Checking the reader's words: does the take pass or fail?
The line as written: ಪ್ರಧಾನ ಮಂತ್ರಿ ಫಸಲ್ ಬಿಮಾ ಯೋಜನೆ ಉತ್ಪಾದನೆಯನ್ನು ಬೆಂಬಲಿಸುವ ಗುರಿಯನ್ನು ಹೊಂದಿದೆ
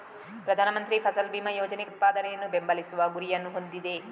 pass